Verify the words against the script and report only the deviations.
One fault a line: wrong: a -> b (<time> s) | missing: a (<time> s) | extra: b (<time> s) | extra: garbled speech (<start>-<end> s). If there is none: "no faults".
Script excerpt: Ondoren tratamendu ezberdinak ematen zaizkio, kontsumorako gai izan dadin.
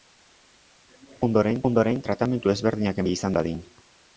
extra: ondoren (1.7 s)
missing: ematen zaizkio kontsumorako (3.0 s)